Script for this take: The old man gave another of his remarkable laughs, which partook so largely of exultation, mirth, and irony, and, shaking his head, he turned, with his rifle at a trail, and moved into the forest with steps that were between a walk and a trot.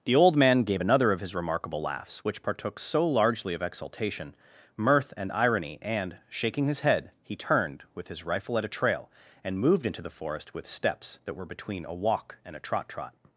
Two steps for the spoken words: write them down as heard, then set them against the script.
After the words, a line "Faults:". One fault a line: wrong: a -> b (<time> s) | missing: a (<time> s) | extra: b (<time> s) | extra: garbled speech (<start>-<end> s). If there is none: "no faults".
The old man gave another of his remarkable laughs, which partook so largely of exultation, mirth, and irony, and, shaking his head, he turned, with his rifle at a trail, and moved into the forest with steps that were between a walk and a trot trot.
Faults:
extra: trot (12.9 s)